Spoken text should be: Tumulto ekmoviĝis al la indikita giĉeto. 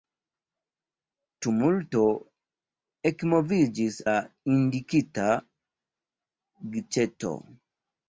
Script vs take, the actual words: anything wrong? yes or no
yes